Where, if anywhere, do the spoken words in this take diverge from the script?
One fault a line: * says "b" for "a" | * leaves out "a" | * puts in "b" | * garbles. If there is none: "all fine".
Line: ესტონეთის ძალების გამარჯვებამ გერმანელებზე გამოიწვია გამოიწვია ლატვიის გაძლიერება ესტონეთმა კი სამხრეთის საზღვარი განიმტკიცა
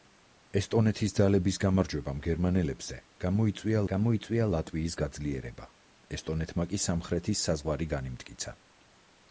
all fine